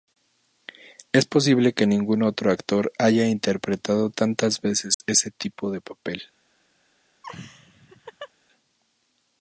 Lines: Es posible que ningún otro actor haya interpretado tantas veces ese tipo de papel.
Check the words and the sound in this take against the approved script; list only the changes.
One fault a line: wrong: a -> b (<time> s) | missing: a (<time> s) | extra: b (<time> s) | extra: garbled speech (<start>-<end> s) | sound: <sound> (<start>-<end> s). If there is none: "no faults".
sound: dropout (4.9-5.0 s)
sound: laugh (7.2-8.3 s)